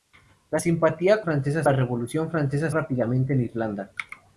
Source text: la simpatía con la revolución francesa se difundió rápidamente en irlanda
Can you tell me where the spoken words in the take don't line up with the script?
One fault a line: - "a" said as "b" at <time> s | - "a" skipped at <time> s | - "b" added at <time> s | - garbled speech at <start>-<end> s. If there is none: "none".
- "con" said as "francesa" at 1.2 s
- "se difundió" skipped at 2.7 s